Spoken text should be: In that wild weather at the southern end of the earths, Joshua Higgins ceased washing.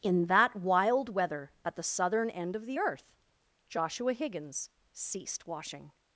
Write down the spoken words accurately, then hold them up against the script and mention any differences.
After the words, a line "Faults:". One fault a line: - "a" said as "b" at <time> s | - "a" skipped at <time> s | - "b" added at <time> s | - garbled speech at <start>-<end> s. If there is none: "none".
In that wild weather at the southern end of the earth, Joshua Higgins ceased washing.
Faults:
- "earths" said as "earth" at 2.8 s